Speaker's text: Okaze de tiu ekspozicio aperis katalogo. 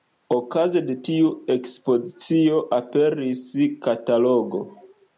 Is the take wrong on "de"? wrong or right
right